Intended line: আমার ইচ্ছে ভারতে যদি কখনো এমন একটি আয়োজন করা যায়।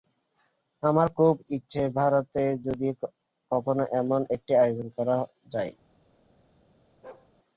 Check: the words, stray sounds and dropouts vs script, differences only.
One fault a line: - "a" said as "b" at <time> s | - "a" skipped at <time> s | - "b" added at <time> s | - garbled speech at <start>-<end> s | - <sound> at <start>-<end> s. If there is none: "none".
- "খুব" added at 1.2 s
- bark at 7.0-7.3 s